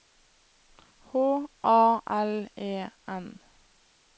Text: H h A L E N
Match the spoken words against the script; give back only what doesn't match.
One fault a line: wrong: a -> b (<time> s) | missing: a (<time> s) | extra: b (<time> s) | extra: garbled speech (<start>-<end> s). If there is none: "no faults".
missing: h (1.5 s)